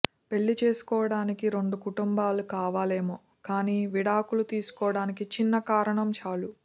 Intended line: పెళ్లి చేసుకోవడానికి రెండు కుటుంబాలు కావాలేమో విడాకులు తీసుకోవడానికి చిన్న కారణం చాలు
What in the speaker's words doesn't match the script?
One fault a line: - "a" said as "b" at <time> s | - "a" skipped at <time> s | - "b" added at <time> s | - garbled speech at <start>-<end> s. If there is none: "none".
- "కానీ" added at 3.4 s